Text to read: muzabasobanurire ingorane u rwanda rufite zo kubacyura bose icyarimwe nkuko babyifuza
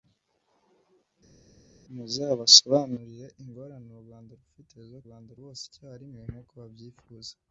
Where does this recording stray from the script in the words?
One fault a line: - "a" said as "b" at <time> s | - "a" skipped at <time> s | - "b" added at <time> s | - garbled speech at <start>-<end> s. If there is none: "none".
- "kubacyura" said as "rwanda" at 5.0 s